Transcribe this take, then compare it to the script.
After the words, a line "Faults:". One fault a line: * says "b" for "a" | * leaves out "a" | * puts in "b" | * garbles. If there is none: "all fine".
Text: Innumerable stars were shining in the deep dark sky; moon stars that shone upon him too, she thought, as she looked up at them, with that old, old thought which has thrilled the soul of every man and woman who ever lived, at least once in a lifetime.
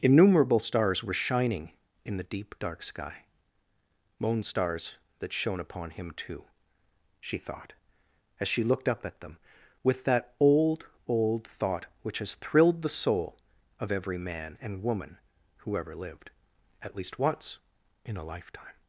Innumerable stars were shining in the deep dark sky; moon stars that shone upon him too, she thought, as she looked up at them, with that old, old thought which has thrilled the soul of every man and woman who ever lived, at least once in a lifetime.
Faults:
all fine